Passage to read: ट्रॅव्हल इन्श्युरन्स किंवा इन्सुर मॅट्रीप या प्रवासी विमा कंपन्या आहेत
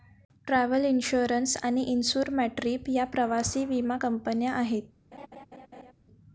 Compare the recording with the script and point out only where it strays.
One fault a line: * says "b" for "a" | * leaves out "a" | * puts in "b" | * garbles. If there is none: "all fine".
* says "आणि" for "किंवा"